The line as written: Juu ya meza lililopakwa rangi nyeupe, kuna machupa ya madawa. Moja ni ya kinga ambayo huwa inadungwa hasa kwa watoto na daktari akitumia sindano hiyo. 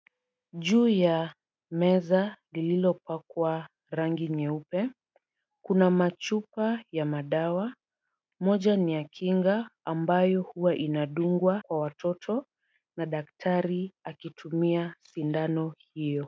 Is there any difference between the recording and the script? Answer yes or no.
yes